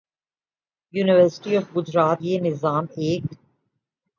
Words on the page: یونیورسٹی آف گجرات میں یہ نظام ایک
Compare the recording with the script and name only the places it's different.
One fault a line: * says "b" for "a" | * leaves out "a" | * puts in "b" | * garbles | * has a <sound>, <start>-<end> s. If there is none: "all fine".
* leaves out "میں"